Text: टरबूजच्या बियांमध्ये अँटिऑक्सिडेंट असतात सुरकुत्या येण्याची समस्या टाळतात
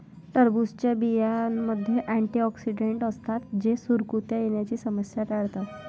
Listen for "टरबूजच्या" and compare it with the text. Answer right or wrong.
right